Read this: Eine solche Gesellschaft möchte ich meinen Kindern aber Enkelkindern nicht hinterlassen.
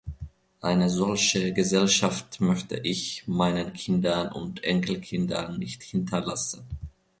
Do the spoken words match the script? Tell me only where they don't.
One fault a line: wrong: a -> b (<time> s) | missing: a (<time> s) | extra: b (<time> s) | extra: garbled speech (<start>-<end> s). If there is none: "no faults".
wrong: aber -> und (4.3 s)